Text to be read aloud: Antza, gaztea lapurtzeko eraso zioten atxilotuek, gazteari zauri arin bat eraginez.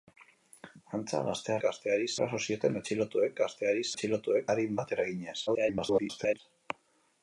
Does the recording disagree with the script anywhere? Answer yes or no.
yes